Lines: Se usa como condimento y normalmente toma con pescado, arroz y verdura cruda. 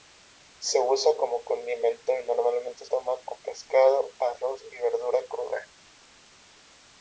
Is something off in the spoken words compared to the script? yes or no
no